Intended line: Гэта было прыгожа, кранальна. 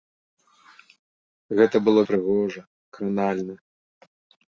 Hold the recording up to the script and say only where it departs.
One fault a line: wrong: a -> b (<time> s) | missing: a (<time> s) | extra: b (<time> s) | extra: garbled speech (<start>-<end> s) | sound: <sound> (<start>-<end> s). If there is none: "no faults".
no faults